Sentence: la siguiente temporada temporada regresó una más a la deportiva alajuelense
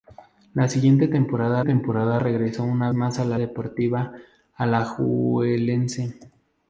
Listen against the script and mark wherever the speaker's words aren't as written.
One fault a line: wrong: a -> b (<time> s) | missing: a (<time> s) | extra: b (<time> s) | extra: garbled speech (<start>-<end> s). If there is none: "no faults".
no faults